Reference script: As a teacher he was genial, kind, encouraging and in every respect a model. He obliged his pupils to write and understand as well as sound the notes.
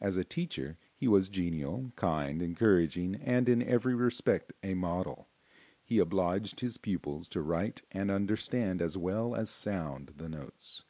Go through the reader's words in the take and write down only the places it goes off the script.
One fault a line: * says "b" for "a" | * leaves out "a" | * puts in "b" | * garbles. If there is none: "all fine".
all fine